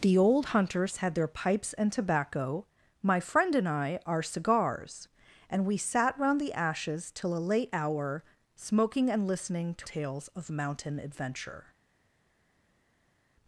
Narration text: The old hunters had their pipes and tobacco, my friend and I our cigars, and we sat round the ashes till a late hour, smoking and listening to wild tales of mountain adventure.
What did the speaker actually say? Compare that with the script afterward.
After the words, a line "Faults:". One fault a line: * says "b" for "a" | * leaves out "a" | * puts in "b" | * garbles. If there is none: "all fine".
The old hunters had their pipes and tobacco, my friend and I our cigars, and we sat round the ashes till a late hour, smoking and listening to tales of mountain adventure.
Faults:
* leaves out "wild"